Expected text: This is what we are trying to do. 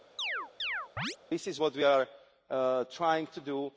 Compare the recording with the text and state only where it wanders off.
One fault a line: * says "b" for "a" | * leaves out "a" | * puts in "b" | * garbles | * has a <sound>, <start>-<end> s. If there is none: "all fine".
* has a chirp, 0.2-1.2 s